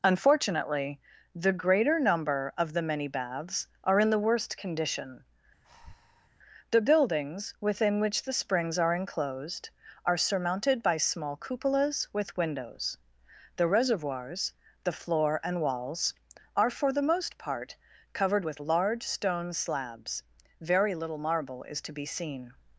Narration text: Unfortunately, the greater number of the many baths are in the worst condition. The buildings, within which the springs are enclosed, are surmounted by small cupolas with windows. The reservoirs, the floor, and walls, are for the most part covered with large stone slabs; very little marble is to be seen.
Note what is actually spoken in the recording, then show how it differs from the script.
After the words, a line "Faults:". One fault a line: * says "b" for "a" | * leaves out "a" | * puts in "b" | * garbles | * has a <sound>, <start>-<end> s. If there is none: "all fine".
Unfortunately, the greater number of the many baths are in the worst condition. The buildings, within which the springs are enclosed, are surmounted by small cupolas with windows. The reservoirs, the floor, and walls, are for the most part covered with large stone slabs; very little marble is to be seen.
Faults:
* has a breath, 5.6-6.3 s